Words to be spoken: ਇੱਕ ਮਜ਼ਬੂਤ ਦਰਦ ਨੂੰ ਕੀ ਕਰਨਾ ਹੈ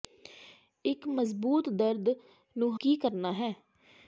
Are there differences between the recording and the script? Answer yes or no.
no